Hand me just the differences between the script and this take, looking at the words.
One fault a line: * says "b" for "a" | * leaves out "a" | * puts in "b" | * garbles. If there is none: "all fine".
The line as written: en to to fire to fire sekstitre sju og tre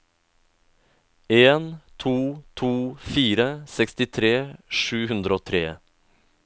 * leaves out "to fire"
* puts in "hundre"